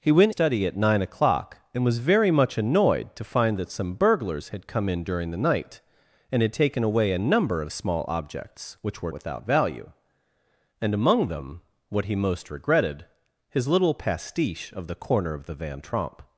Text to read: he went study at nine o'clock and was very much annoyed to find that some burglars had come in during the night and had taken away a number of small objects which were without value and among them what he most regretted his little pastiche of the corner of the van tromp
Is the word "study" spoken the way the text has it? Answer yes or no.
yes